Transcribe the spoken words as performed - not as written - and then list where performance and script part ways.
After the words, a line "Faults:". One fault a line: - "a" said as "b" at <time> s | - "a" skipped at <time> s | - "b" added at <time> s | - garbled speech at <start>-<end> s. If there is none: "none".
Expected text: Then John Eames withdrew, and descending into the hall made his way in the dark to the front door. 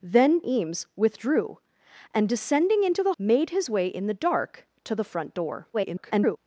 Then Eames withdrew, and descending into the made his way in the dark to the front door. [garbled]
Faults:
- "John" skipped at 0.4 s
- "hall" skipped at 3.1 s
- garbled speech at 5.7-6.4 s